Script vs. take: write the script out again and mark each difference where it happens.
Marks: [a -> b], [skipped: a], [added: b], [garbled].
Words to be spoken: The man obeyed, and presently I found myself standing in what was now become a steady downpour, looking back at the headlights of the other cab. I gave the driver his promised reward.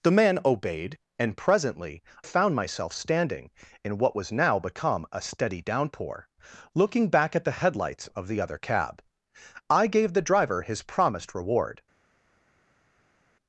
The man obeyed, and presently [skipped: I] found myself standing in what was now become a steady downpour, looking back at the headlights of the other cab. I gave the driver his promised reward.